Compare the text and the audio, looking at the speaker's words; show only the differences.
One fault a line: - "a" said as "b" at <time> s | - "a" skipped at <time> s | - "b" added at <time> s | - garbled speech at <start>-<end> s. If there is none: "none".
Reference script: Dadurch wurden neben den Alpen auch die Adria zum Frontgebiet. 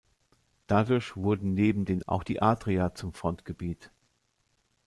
- "Alpen" skipped at 2.0 s